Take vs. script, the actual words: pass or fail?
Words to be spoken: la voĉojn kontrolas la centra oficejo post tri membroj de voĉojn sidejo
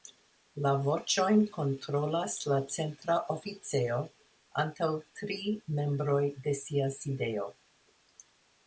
fail